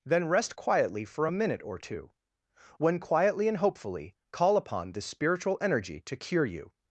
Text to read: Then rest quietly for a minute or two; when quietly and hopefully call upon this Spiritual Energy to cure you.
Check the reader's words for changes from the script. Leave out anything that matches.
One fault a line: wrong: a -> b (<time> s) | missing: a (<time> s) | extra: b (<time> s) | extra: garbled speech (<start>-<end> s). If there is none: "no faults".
no faults